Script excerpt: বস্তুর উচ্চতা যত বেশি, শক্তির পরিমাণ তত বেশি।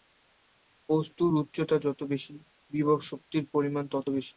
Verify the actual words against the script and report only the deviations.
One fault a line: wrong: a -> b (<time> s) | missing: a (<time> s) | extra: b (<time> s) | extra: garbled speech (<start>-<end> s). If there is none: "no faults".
extra: বিভব (2.7 s)